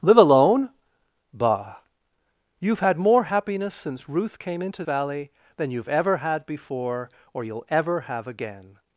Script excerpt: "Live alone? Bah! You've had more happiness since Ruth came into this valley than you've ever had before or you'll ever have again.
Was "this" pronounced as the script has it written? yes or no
no